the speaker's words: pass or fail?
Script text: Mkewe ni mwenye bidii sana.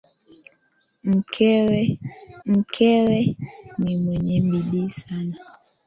fail